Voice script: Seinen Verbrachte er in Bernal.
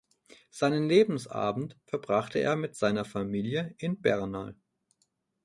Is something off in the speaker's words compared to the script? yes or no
yes